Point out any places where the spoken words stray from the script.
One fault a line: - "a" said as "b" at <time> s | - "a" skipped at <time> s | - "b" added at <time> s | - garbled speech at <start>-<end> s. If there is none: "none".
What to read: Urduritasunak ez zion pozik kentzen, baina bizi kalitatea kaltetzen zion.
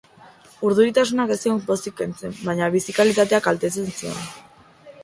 none